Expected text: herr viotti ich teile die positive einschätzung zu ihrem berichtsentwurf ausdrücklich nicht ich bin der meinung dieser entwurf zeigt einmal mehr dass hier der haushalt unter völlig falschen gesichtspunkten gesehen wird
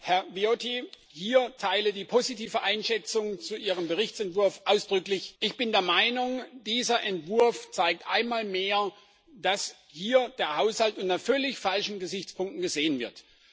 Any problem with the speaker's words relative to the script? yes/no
yes